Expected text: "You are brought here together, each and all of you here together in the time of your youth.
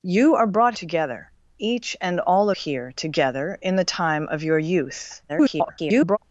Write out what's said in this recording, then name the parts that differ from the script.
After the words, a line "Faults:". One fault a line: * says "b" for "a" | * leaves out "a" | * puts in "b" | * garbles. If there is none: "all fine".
"You are brought together, each and all here together in the time of your youth. [garbled]
Faults:
* leaves out "here"
* leaves out "of you"
* garbles